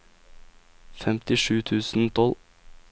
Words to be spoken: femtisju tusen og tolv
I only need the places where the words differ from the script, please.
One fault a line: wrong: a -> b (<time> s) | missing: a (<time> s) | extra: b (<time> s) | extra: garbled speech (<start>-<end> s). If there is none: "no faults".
no faults